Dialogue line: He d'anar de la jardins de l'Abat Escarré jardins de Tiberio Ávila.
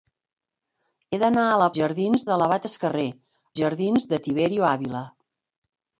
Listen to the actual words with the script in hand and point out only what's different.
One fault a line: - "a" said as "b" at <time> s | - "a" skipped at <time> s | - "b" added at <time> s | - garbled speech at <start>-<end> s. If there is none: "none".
none